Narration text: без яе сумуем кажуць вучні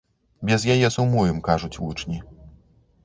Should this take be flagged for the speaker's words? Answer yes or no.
no